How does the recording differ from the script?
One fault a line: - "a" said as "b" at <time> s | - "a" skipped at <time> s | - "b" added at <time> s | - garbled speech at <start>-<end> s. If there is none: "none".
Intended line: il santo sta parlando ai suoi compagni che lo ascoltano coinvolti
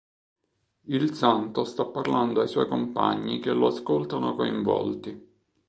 none